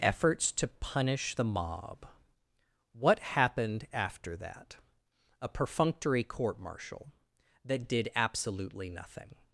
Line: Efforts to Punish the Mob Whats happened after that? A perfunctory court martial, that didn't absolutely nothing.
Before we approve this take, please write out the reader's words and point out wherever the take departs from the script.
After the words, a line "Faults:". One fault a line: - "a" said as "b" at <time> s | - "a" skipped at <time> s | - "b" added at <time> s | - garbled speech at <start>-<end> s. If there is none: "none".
Efforts to Punish the Mob What happened after that? A perfunctory court martial, that did absolutely nothing.
Faults:
- "Whats" said as "What" at 2.9 s
- "didn't" said as "did" at 7.9 s